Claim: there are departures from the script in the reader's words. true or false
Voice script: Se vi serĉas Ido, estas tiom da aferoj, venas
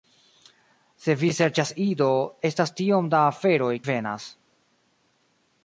false